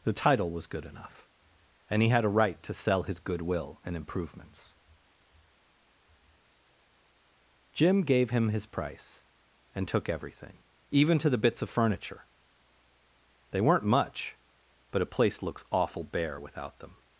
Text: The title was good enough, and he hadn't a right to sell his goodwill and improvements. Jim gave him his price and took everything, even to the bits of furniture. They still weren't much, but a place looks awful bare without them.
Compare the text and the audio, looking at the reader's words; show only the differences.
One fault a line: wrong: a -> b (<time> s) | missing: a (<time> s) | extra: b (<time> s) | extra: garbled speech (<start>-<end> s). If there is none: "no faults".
wrong: hadn't -> had (2.1 s)
missing: still (13.6 s)